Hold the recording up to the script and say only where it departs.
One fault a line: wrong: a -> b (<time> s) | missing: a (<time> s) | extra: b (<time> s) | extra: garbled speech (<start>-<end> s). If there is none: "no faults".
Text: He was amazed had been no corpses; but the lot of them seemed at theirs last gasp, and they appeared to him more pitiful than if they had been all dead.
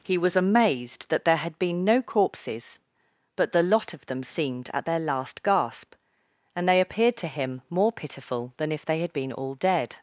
extra: that there (1.1 s)
wrong: theirs -> their (4.8 s)